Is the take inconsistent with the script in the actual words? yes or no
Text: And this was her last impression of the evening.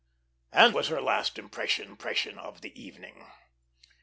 yes